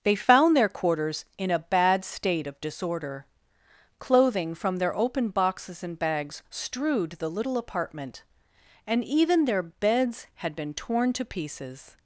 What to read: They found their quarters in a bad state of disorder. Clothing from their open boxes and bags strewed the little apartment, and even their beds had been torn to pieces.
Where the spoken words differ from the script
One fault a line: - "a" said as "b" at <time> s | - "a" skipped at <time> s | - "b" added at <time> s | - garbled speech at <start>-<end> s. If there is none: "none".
none